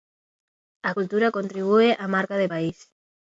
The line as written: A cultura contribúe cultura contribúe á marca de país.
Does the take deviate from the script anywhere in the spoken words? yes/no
yes